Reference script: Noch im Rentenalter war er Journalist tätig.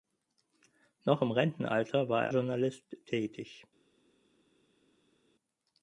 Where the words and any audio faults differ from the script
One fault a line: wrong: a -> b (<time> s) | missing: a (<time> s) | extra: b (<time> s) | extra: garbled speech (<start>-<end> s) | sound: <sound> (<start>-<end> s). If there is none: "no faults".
no faults